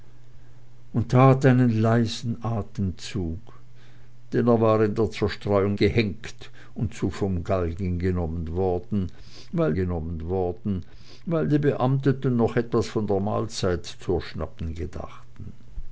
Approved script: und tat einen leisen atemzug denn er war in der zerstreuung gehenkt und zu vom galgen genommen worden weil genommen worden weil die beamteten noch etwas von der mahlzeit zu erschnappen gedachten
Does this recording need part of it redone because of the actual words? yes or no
no